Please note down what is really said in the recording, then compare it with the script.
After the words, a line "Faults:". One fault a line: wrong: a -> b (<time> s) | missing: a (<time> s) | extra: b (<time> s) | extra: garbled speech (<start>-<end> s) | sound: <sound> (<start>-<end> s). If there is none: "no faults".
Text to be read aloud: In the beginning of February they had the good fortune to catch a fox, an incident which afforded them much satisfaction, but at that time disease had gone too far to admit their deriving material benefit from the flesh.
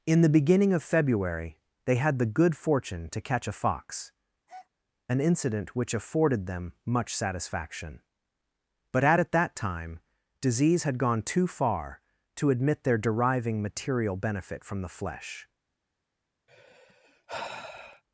In the beginning of February they had the good fortune to catch a fox, an incident which afforded them much satisfaction, but at at that time disease had gone too far to admit their deriving material benefit from the flesh.
Faults:
sound: breath (4.5-4.7 s)
extra: at (9.2 s)
sound: sigh (16.5-18.0 s)